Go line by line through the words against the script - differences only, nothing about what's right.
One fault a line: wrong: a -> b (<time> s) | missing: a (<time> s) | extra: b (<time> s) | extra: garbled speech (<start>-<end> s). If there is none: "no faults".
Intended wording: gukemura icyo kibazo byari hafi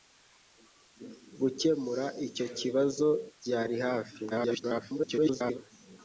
extra: garbled speech (4.3-5.6 s)